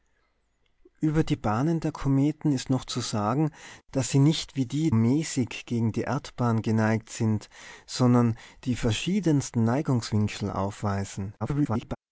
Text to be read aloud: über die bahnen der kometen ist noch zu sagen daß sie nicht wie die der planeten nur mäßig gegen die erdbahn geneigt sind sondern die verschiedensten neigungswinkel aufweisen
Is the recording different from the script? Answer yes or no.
yes